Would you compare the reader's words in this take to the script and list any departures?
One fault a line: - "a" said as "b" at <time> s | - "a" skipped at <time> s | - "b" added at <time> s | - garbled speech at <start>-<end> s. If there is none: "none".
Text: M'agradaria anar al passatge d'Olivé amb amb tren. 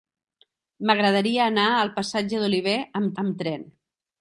none